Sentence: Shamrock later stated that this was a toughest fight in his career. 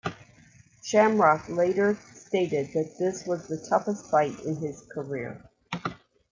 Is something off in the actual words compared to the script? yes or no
yes